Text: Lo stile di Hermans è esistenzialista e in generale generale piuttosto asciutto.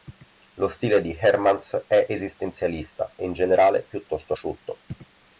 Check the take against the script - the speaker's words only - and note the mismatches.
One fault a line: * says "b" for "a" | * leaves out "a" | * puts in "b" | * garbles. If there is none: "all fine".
* leaves out "generale"